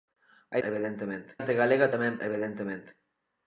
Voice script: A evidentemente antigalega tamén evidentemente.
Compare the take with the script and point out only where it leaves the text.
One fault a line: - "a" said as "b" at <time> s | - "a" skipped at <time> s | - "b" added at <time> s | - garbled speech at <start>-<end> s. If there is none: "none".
none